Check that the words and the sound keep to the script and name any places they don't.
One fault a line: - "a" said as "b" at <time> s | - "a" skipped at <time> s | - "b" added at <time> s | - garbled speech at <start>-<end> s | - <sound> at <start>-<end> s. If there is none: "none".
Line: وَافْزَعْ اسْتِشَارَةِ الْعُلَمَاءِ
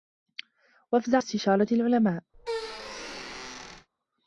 - squeak at 2.3-3.9 s